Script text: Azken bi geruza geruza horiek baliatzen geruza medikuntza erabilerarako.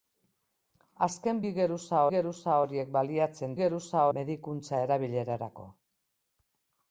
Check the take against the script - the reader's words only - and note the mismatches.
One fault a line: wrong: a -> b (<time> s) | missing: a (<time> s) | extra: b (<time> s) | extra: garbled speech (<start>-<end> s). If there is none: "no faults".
no faults